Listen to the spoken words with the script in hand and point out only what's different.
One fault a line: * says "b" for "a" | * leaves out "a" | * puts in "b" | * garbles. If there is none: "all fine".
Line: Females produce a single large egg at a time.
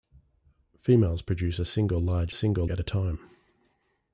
* says "single" for "egg"